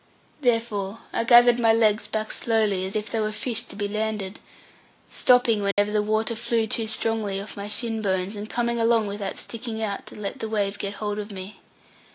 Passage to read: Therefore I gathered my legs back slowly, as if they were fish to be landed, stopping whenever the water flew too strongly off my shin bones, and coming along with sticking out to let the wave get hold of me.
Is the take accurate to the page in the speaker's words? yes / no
no